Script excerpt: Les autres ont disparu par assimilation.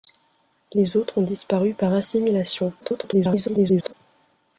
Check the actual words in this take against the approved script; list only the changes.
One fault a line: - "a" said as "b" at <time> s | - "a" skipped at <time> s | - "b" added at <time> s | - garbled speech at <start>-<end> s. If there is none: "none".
- garbled speech at 2.8-3.9 s